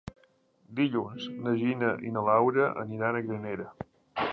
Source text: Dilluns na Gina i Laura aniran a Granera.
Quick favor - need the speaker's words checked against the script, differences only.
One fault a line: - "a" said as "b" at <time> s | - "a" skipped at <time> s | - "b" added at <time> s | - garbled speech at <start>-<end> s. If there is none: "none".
- "na" added at 2.2 s